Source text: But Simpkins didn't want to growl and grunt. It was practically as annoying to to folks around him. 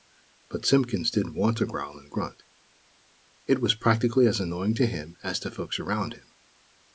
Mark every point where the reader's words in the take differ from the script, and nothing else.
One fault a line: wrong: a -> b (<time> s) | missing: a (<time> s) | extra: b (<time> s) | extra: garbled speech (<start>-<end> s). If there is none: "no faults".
extra: him as (4.9 s)